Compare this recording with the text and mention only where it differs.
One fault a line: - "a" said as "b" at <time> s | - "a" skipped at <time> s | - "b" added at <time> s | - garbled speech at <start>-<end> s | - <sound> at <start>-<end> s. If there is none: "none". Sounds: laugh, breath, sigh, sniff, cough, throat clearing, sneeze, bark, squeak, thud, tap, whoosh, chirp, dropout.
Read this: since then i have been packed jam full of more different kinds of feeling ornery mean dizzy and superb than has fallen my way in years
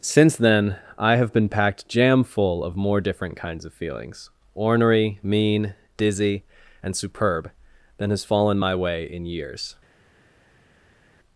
- "feeling" said as "feelings" at 3.7 s